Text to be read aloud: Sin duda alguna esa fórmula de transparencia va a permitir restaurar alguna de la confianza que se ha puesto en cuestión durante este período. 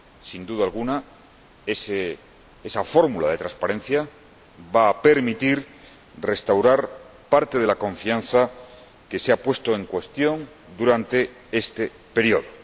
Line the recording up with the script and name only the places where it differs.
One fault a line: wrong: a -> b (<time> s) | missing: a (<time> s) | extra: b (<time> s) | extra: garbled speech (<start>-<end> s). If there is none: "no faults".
wrong: alguna -> parte (7.3 s)